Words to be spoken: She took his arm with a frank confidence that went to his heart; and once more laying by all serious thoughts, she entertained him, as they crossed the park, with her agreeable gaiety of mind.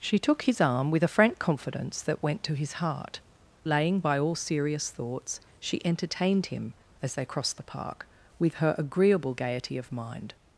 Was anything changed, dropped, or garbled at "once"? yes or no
yes